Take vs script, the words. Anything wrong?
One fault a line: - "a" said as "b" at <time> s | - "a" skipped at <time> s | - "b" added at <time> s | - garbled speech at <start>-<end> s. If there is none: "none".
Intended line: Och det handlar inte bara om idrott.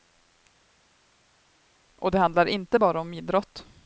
none